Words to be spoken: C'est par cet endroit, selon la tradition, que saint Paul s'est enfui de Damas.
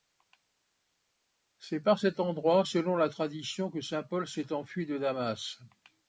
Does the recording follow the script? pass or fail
pass